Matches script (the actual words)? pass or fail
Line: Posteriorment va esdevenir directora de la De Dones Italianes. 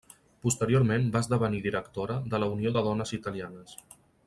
fail